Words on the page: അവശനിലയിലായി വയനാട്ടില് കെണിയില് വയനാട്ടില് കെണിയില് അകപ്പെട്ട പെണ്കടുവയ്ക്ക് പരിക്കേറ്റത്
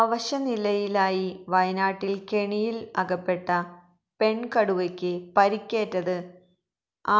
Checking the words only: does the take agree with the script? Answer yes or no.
no